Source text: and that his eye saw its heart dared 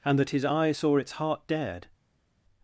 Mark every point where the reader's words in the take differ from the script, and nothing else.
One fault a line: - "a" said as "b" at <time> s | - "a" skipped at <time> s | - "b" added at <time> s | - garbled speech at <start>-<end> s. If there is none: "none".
none